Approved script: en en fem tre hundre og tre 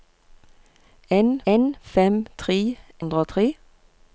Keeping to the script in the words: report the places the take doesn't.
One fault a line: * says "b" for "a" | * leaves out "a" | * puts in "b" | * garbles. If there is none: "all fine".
all fine